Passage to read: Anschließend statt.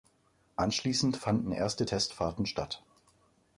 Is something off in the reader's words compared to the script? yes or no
yes